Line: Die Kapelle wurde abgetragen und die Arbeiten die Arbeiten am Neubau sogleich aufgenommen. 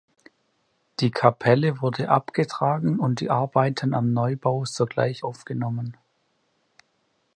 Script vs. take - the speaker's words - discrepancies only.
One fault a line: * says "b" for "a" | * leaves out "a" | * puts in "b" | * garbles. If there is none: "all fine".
* leaves out "die Arbeiten"